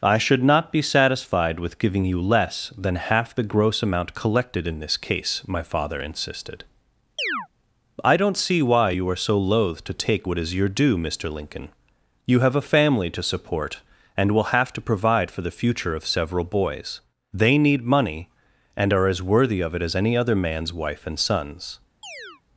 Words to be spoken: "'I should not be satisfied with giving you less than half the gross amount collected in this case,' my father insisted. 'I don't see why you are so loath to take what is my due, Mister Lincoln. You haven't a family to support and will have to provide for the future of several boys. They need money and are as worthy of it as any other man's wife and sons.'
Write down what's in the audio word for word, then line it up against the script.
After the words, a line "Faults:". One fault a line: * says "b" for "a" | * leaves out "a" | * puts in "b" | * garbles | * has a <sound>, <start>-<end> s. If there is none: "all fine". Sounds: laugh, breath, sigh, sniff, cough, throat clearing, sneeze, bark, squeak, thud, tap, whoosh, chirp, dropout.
"'I should not be satisfied with giving you less than half the gross amount collected in this case,' my father insisted. 'I don't see why you are so loath to take what is your due, Mister Lincoln. You have a family to support and will have to provide for the future of several boys. They need money and are as worthy of it as any other man's wife and sons.'
Faults:
* has a chirp, 7.2-7.5 s
* says "your" for "my"
* says "have" for "haven't"
* has a chirp, 22.0-22.4 s